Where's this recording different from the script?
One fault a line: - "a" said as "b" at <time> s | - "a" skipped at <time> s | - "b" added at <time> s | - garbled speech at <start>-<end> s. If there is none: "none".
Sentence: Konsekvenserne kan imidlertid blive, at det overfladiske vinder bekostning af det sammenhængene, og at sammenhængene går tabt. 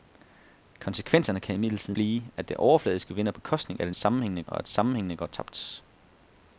none